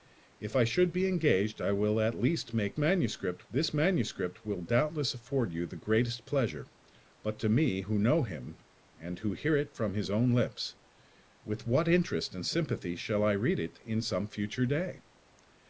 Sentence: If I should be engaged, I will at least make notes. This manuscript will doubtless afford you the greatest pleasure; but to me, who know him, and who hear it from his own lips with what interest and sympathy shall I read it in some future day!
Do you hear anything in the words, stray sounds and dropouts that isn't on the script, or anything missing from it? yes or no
yes